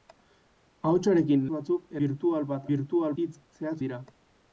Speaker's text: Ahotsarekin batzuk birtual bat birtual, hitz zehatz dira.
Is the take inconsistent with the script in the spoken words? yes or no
no